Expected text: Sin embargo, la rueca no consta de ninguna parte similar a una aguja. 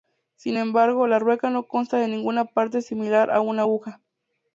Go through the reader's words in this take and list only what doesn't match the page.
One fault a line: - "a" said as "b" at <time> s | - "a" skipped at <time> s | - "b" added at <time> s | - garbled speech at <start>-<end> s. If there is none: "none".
none